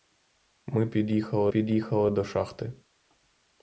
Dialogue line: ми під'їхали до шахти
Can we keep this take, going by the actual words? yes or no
no